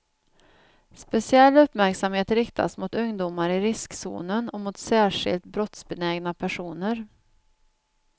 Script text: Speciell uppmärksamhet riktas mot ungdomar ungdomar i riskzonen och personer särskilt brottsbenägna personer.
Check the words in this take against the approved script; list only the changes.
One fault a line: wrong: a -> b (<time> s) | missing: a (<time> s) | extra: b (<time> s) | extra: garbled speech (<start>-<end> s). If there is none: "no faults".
missing: ungdomar (3.5 s)
wrong: personer -> mot (4.6 s)